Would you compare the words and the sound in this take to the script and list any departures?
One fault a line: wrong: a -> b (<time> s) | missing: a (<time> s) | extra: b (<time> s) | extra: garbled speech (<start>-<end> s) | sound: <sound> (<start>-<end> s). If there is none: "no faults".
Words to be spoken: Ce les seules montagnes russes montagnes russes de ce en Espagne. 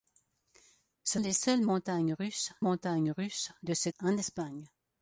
no faults